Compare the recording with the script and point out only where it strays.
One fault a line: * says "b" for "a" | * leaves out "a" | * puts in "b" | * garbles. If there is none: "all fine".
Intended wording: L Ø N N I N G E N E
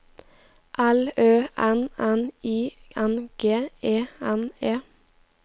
all fine